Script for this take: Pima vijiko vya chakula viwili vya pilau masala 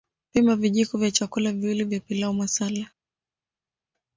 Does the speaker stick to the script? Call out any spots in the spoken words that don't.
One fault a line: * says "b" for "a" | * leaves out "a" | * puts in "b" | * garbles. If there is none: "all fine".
all fine